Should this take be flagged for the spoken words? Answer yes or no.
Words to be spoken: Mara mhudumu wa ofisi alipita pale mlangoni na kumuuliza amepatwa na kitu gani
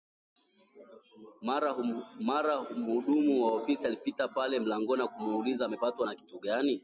no